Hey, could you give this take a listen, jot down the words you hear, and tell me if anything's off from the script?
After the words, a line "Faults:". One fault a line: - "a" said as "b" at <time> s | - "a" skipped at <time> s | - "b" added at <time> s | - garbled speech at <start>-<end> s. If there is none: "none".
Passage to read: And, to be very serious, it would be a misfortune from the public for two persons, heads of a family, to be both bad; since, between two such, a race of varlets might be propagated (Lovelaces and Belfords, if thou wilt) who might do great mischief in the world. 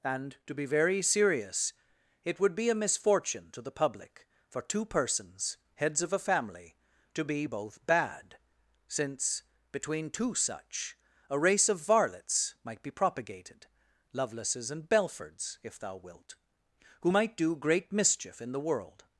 And, to be very serious, it would be a misfortune to the public for two persons, heads of a family, to be both bad; since, between two such, a race of varlets might be propagated (Lovelaces and Belfords, if thou wilt) who might do great mischief in the world.
Faults:
- "from" said as "to" at 3.5 s